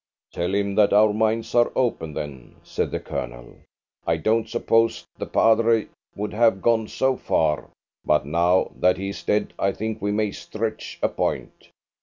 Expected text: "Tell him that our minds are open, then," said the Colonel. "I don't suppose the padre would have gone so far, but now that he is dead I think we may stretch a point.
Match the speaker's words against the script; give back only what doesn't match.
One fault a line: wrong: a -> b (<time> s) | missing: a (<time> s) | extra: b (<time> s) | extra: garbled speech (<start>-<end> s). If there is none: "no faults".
no faults